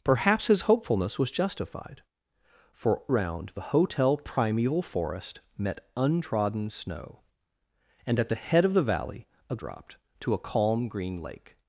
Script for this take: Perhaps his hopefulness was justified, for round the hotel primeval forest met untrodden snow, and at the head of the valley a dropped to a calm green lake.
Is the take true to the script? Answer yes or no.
yes